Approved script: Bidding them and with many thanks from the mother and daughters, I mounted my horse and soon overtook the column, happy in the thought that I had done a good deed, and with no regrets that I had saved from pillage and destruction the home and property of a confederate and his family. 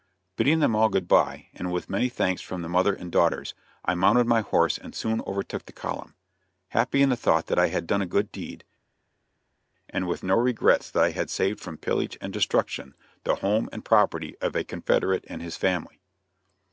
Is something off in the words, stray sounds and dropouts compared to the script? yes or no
yes